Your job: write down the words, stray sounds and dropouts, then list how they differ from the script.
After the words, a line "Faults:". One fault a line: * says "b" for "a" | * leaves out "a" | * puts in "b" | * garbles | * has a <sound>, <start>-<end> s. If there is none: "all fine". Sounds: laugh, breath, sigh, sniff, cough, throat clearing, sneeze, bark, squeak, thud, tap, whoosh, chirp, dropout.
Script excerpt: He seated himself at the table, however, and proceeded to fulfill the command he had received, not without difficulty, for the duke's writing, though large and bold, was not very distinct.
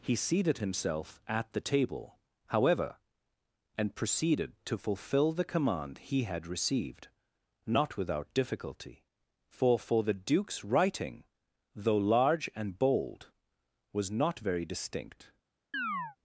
He seated himself at the table, however, and proceeded to fulfill the command he had received, not without difficulty, for for the duke's writing, though large and bold, was not very distinct.
Faults:
* puts in "for"
* has a chirp, 15.7-16.2 s